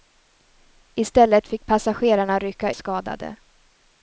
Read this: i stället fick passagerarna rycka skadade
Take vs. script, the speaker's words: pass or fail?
pass